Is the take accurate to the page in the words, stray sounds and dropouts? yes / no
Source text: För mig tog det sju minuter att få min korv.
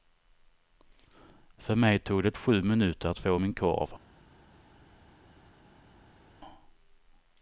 yes